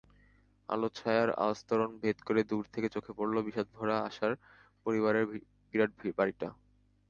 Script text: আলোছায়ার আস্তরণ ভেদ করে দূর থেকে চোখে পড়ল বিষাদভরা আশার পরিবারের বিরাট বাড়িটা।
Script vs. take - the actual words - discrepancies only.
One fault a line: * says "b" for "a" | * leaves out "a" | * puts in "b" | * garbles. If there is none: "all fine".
all fine